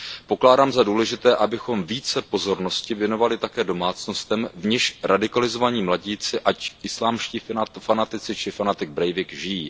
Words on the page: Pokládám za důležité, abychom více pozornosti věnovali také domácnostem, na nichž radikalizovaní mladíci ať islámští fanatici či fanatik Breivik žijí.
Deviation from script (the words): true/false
true